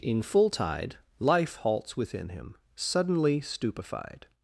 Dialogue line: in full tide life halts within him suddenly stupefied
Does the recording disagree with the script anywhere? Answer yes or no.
no